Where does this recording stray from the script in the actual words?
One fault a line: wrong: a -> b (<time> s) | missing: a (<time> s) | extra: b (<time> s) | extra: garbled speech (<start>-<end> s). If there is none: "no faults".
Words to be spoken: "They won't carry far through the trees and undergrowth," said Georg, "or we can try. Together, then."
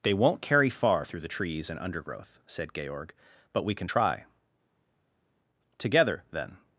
wrong: or -> but (3.5 s)